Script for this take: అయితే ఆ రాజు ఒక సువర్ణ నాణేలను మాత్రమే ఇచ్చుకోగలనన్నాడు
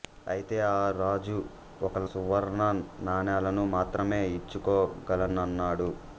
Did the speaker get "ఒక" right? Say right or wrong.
right